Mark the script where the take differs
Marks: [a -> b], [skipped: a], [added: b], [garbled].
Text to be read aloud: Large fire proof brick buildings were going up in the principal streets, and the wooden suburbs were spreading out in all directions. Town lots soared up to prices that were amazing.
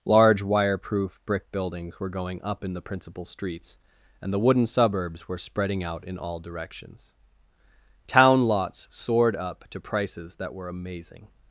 Large [fire -> wire] proof brick buildings were going up in the principal streets, and the wooden suburbs were spreading out in all directions. Town lots soared up to prices that were amazing.